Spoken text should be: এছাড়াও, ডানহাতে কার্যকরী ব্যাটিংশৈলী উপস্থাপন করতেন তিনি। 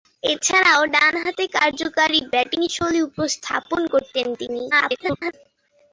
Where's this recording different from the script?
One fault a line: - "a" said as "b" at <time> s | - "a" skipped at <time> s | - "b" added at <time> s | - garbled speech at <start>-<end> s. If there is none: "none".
- garbled speech at 4.7-5.3 s